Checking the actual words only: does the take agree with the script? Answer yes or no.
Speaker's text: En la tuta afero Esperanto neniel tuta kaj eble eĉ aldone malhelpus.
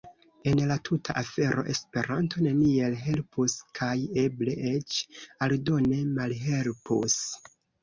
no